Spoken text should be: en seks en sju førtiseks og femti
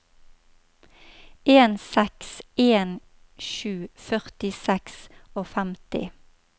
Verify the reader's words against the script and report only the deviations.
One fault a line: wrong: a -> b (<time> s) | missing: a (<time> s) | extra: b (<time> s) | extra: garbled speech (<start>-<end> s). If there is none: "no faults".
no faults